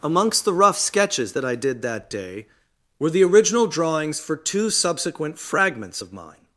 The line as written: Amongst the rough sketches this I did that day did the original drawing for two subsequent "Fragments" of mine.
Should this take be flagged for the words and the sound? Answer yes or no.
yes